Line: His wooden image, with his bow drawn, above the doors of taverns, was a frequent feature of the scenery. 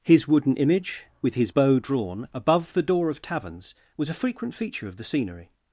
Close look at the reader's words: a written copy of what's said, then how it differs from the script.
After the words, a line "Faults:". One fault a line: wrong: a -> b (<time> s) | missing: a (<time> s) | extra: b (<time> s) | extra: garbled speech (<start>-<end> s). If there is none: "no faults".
His wooden image, with his bow drawn, above the door of taverns, was a frequent feature of the scenery.
Faults:
wrong: doors -> door (2.8 s)